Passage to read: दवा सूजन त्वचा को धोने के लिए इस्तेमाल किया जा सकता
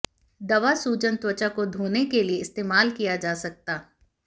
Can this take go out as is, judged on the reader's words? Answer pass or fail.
pass